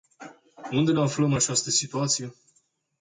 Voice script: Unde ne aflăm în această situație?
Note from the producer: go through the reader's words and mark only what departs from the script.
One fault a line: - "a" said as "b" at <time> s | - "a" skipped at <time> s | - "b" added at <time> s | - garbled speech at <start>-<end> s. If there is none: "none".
none